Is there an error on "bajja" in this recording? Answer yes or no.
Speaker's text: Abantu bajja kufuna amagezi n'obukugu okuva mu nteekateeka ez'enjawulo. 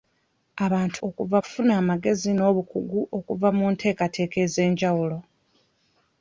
yes